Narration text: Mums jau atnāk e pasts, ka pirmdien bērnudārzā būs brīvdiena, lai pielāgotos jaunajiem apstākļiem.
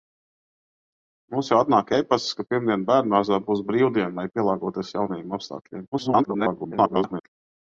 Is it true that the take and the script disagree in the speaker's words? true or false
true